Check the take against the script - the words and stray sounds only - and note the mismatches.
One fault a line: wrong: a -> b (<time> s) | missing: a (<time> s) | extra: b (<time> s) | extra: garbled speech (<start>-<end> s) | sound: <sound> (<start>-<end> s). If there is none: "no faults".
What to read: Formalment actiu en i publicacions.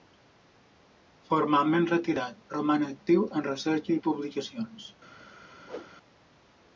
extra: retirat roman (1.9 s)
extra: recerca (3.5 s)
sound: whoosh (5.6-5.9 s)